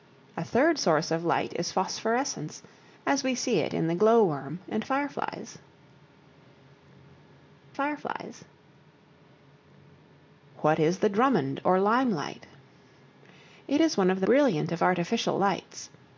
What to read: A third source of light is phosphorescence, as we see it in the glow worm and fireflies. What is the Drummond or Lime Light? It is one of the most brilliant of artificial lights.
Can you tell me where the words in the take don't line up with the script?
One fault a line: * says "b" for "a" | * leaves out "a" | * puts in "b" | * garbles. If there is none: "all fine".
* puts in "fireflies"
* leaves out "most"